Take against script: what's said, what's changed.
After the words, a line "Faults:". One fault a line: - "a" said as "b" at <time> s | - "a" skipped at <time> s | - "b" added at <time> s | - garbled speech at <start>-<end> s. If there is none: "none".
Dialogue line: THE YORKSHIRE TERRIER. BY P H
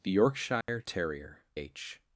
THE YORKSHIRE TERRIER. H
Faults:
- "BY P" skipped at 1.4 s